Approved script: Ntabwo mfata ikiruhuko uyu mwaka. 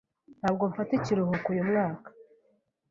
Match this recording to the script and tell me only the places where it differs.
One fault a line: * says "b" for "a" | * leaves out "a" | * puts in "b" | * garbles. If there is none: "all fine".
all fine